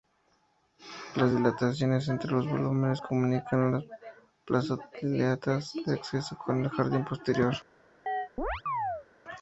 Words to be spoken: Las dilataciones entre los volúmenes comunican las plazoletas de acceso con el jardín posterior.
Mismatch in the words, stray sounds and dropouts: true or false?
true